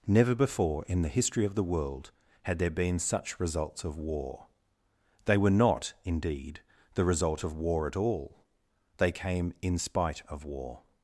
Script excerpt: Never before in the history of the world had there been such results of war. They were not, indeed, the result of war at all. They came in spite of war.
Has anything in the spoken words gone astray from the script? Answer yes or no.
no